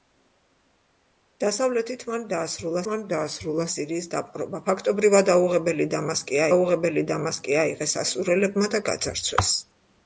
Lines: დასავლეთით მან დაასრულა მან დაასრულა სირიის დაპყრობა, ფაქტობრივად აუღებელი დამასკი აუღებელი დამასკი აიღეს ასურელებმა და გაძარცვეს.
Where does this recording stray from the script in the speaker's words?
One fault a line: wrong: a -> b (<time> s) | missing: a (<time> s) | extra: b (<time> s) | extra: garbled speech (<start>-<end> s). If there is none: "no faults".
no faults